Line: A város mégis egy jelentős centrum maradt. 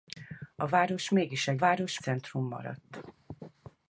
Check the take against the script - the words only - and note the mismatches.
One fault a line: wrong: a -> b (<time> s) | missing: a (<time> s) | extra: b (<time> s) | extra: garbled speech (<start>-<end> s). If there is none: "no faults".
wrong: jelentős -> város (1.6 s)